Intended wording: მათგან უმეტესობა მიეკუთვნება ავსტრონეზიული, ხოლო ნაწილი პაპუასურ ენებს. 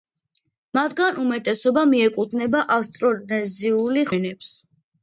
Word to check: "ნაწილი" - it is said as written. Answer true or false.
false